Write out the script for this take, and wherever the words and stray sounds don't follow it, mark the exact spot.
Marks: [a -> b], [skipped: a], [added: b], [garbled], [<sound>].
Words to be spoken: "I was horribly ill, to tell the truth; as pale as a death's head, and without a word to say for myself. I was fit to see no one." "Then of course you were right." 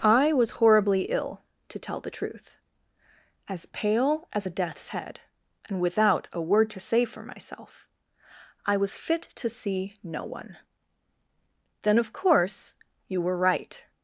"I was horribly ill, to tell the truth; as pale as a death's head, and without a word to say for myself. I was fit to see no one." "Then of course you were right."